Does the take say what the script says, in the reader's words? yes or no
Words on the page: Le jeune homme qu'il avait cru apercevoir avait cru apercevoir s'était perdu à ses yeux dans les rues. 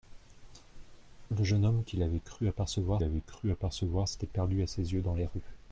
yes